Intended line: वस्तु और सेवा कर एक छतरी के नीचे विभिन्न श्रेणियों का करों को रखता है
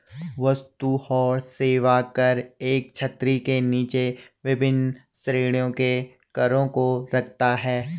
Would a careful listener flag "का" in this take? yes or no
yes